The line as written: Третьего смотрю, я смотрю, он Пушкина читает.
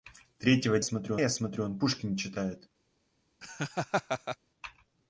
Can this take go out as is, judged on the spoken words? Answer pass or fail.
pass